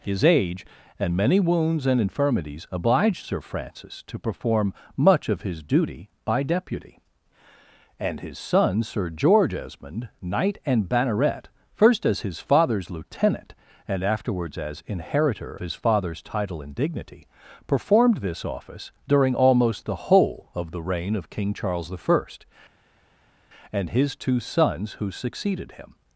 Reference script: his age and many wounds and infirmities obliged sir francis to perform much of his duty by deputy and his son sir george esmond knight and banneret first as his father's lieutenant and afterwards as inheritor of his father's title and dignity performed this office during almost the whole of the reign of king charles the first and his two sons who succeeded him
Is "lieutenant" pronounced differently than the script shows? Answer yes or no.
no